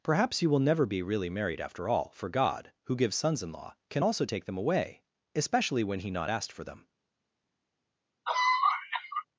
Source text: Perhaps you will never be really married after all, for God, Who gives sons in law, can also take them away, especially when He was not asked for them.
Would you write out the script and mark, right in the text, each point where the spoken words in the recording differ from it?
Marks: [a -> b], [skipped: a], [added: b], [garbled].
Perhaps you will never be really married after all, for God, Who gives sons in law, can also take them away, especially when He [skipped: was] not asked for them.